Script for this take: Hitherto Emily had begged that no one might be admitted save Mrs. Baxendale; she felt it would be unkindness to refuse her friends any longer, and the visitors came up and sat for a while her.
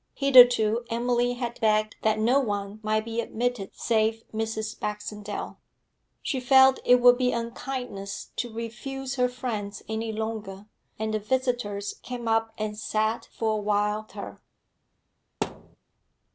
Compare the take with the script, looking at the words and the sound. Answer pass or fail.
fail